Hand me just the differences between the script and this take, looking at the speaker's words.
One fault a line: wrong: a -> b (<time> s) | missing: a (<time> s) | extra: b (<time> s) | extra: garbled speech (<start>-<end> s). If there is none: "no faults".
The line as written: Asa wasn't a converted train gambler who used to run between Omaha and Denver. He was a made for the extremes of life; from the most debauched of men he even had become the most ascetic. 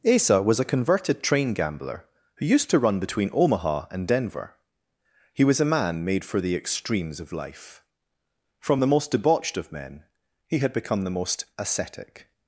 wrong: wasn't -> was (0.4 s)
extra: man (5.7 s)
missing: even (10.6 s)